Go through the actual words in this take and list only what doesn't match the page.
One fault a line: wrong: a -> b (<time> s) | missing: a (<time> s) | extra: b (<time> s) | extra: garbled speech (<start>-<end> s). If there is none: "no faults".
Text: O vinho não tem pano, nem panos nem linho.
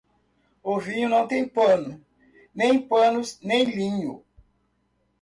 no faults